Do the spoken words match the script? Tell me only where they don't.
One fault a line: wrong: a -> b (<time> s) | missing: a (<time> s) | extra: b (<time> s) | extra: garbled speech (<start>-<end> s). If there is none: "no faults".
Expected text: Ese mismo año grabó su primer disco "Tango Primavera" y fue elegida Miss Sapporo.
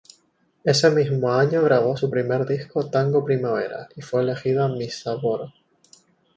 no faults